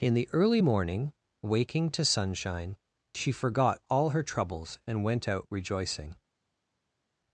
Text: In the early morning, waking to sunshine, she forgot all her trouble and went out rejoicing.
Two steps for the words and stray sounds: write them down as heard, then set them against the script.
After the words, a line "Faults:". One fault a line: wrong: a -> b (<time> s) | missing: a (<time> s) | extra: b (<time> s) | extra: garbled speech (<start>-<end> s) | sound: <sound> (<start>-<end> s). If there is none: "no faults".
In the early morning, waking to sunshine, she forgot all her troubles and went out rejoicing.
Faults:
wrong: trouble -> troubles (4.2 s)